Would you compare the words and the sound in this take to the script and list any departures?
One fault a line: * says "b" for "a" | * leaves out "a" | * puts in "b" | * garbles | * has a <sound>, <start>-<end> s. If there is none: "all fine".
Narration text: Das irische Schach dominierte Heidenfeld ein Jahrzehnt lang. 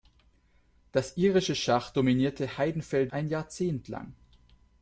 all fine